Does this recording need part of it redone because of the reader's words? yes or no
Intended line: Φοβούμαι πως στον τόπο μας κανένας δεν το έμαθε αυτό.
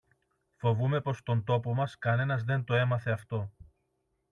no